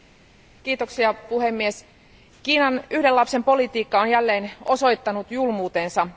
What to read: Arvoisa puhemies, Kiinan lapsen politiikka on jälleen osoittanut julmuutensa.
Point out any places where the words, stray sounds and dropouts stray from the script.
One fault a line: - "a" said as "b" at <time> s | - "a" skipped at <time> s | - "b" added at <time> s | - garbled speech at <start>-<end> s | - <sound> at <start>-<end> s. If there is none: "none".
- "yhden" added at 2.9 s